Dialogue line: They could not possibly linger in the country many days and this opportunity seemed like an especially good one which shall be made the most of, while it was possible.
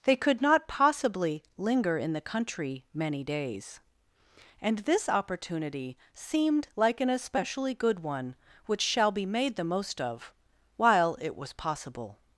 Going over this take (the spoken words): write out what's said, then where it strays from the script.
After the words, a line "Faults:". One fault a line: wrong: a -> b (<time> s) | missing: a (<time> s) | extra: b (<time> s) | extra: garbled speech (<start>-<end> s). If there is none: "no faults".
They could not possibly linger in the country many days and this opportunity seemed like an especially good one which shall be made the most of, while it was possible.
Faults:
no faults